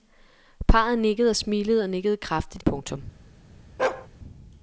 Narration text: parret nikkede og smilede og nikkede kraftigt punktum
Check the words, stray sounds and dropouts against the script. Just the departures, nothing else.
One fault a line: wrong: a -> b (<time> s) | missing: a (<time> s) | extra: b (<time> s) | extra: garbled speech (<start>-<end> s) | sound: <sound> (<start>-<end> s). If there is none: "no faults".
sound: bark (3.8-4.1 s)